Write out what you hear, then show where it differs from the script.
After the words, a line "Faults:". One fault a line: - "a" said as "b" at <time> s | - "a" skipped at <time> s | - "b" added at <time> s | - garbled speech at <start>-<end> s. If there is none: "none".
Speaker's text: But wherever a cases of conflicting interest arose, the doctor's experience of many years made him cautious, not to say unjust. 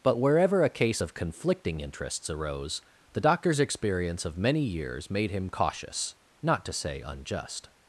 But wherever a case of conflicting interests arose, the doctor's experience of many years made him cautious, not to say unjust.
Faults:
- "cases" said as "case" at 0.7 s
- "interest" said as "interests" at 1.8 s